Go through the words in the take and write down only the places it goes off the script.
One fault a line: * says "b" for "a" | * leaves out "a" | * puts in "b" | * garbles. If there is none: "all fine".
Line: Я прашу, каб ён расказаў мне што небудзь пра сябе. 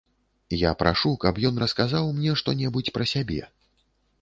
all fine